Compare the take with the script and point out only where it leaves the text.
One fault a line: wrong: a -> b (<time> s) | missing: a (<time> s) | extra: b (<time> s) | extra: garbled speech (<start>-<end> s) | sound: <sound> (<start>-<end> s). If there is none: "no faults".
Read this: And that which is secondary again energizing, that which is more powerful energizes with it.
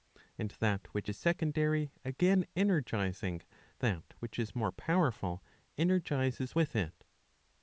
no faults